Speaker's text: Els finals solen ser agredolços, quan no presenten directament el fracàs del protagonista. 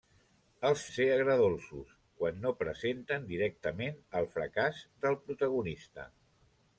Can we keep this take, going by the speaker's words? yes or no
no